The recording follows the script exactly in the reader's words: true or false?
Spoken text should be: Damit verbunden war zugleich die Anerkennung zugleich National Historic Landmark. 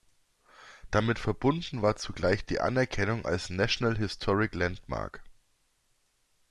false